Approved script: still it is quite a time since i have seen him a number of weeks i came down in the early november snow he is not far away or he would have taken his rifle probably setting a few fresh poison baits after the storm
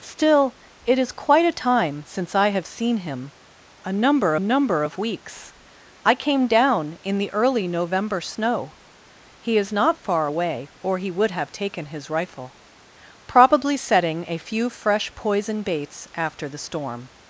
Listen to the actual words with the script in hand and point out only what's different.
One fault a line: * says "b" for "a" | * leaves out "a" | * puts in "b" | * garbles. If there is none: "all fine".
* puts in "number"